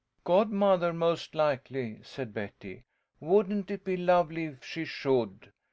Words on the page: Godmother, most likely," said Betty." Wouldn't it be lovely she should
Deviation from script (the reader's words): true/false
true